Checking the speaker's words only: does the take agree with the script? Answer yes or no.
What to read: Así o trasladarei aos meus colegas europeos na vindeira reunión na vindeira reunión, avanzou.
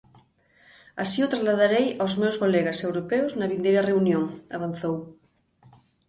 no